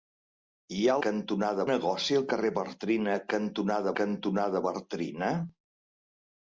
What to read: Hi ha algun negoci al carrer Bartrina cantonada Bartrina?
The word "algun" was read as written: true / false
false